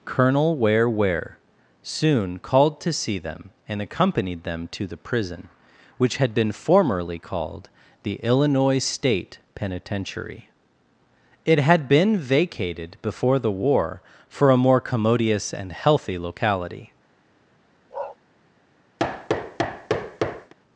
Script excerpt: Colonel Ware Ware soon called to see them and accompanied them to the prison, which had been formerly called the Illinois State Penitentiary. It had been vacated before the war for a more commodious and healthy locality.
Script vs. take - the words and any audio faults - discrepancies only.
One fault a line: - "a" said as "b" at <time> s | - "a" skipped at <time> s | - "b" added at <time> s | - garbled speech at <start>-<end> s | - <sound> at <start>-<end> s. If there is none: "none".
- bark at 17.9-18.2 s
- thud at 19.0-20.5 s